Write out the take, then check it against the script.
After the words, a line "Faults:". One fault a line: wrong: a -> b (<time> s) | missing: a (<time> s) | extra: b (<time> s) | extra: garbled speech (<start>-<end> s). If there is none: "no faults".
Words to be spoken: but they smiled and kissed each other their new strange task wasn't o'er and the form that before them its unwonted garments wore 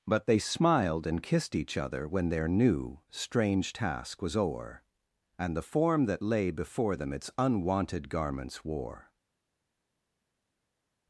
but they smiled and kissed each other when their new strange task was o'er and the form that lay before them its unwonted garments wore
Faults:
extra: when (2.1 s)
wrong: wasn't -> was (4.2 s)
extra: lay (6.2 s)